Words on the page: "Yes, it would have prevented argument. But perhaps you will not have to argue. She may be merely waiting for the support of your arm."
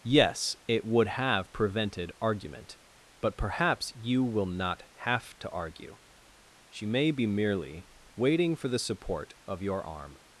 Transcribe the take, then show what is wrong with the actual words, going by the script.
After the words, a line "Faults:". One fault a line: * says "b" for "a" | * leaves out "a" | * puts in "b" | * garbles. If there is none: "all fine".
"Yes, it would have prevented argument. But perhaps you will not have to argue. She may be merely waiting for the support of your arm."
Faults:
all fine